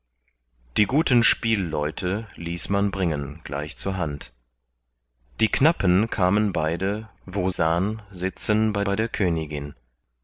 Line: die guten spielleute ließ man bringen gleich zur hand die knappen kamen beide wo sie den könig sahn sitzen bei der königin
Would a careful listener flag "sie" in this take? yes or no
yes